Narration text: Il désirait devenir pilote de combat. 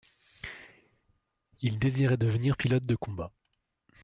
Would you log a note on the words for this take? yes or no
no